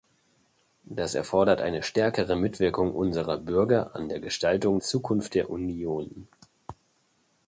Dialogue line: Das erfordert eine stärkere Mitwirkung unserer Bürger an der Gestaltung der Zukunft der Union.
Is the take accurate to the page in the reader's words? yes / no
no